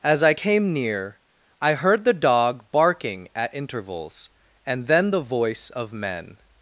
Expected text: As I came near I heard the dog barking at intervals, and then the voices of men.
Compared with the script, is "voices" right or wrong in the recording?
wrong